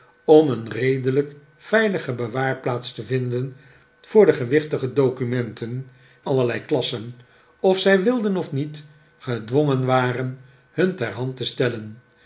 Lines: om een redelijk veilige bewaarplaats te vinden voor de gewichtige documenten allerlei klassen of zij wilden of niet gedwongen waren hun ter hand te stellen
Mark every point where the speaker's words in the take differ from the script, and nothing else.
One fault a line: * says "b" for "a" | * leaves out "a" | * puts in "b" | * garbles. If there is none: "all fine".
all fine